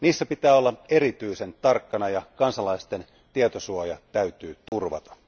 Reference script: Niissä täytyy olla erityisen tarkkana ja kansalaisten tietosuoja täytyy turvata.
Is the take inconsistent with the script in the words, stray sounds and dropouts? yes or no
yes